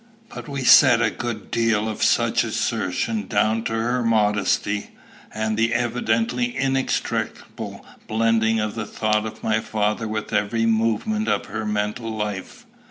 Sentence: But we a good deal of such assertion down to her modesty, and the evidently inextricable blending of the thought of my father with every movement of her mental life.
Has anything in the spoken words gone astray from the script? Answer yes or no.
yes